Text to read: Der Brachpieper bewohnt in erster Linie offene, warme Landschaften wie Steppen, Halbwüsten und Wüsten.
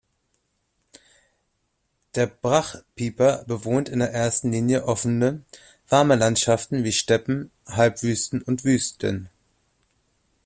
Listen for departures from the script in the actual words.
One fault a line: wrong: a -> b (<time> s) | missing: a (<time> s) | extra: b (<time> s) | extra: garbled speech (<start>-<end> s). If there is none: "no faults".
no faults